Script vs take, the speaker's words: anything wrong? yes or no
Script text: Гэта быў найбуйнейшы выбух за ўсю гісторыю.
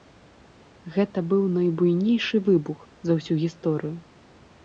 no